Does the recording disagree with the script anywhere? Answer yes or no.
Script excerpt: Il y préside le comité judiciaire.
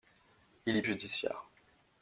yes